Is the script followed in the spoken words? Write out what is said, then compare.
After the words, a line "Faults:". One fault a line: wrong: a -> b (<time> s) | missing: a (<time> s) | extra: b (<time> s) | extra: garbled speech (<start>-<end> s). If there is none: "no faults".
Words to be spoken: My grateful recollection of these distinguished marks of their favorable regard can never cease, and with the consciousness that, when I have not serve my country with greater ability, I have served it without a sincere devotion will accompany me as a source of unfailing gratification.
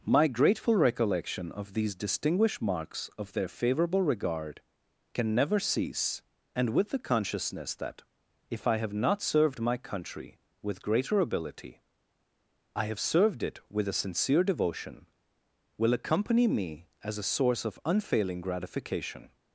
My grateful recollection of these distinguished marks of their favorable regard can never cease, and with the consciousness that, if I have not served my country with greater ability, I have served it with a sincere devotion will accompany me as a source of unfailing gratification.
Faults:
wrong: when -> if (8.5 s)
wrong: serve -> served (9.2 s)
wrong: without -> with (13.7 s)